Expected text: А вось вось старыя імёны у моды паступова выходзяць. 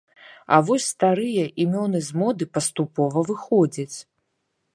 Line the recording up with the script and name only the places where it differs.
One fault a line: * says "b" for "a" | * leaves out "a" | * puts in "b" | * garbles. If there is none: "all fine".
* leaves out "вось"
* says "з" for "у"